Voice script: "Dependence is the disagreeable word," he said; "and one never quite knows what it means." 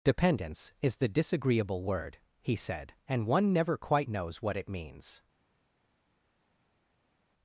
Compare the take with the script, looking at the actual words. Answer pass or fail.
pass